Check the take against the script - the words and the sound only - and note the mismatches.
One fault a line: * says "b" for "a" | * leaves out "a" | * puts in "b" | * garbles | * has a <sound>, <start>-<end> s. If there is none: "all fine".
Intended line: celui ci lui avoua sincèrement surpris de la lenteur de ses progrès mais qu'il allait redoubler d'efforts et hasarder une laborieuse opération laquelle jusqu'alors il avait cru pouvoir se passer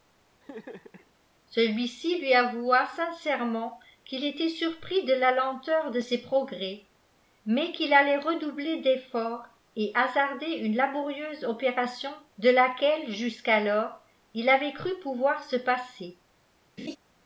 * has a laugh, 0.4-1.1 s
* puts in "qu'il était"
* puts in "de"
* has a laugh, 16.8-17.0 s